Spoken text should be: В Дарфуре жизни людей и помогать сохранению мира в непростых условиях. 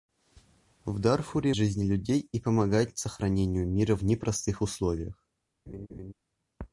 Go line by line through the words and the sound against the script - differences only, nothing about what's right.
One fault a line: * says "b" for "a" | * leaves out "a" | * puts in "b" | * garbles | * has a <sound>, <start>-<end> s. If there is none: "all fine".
* has a laugh, 5.7-6.1 s